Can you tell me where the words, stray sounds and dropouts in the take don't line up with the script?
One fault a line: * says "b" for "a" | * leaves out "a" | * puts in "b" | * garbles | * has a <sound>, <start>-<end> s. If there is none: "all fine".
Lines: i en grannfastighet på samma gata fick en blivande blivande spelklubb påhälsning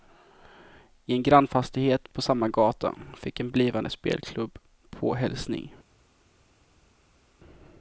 * leaves out "blivande"